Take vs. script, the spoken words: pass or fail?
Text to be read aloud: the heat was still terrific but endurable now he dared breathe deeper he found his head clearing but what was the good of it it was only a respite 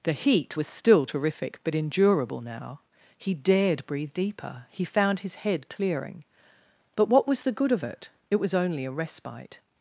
pass